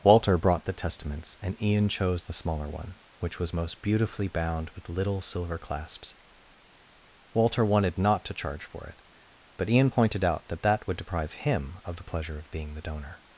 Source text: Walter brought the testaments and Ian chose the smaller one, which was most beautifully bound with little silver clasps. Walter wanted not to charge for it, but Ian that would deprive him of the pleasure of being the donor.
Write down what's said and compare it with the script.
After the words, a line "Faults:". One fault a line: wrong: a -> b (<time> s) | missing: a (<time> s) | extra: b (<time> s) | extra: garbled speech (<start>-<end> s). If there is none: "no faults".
Walter brought the testaments and Ian chose the smaller one, which was most beautifully bound with little silver clasps. Walter wanted not to charge for it, but Ian pointed out that that would deprive him of the pleasure of being the donor.
Faults:
extra: pointed out that (9.9 s)